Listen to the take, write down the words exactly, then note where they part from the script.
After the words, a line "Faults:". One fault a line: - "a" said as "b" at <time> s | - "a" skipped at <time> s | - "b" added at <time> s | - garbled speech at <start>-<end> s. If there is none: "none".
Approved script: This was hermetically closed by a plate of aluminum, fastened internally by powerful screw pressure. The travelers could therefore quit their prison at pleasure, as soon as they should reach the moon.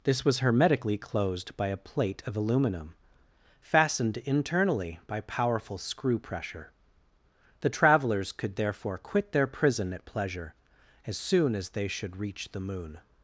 This was hermetically closed by a plate of aluminum, fastened internally by powerful screw pressure. The travelers could therefore quit their prison at pleasure, as soon as they should reach the moon.
Faults:
none